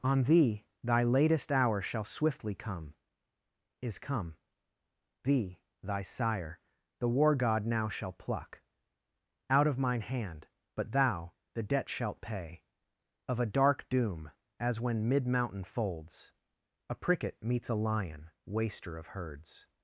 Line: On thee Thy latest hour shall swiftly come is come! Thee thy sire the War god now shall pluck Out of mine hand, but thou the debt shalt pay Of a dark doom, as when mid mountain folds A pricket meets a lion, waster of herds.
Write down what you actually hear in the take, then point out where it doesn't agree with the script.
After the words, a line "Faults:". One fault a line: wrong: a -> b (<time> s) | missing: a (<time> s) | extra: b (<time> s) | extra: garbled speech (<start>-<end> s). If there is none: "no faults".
On thee Thy latest hour shall swiftly come is come! Thee thy sire the War god now shall pluck Out of mine hand, but thou the debt shalt pay Of a dark doom, as when mid mountain folds A pricket meets a lion, waster of herds.
Faults:
no faults